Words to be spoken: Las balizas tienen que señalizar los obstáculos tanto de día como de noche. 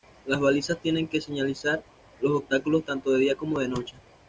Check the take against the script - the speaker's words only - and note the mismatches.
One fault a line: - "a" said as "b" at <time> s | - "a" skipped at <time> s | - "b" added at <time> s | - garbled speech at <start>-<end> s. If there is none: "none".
none